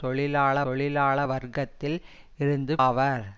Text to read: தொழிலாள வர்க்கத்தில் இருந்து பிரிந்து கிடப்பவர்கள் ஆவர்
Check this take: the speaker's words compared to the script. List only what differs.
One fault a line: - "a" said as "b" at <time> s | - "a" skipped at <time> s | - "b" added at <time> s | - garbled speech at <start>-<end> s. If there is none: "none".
- "தொழிலாள" added at 0.6 s
- "பிரிந்து கிடப்பவர்கள்" skipped at 2.7 s